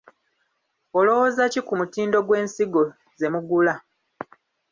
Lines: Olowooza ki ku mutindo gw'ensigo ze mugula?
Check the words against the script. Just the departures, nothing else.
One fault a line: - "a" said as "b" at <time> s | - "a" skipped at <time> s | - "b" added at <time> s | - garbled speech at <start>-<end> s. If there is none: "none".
none